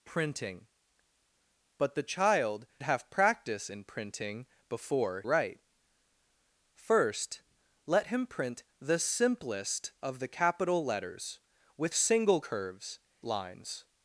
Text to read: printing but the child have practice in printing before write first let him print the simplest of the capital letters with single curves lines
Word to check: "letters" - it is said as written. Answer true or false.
true